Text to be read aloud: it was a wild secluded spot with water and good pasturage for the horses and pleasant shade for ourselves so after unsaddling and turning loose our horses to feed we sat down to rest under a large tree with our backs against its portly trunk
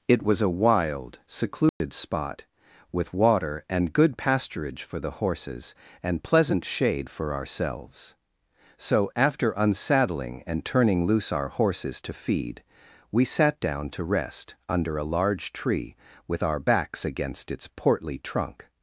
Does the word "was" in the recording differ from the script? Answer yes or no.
no